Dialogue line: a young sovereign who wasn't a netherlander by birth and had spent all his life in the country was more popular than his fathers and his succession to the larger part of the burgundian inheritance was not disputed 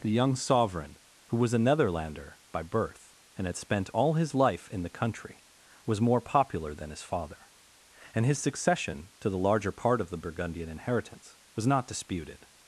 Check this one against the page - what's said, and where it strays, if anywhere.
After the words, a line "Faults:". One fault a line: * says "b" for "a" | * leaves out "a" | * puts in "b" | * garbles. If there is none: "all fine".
the young sovereign who was a netherlander by birth and had spent all his life in the country was more popular than his father and his succession to the larger part of the burgundian inheritance was not disputed
Faults:
* says "the" for "a"
* says "was" for "wasn't"
* says "father" for "fathers"